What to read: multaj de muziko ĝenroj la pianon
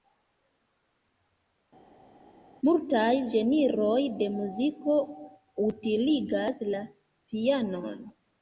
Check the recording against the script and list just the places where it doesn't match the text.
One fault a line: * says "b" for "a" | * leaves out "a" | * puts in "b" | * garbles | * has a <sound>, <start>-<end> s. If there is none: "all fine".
* puts in "ĝenroj"
* says "utiligas" for "ĝenroj"